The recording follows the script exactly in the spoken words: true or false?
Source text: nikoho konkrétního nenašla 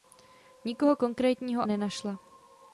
true